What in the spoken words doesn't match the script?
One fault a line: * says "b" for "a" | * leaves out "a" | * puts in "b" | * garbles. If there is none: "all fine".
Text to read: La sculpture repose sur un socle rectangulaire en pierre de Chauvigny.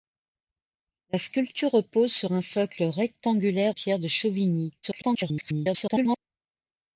* leaves out "en"
* garbles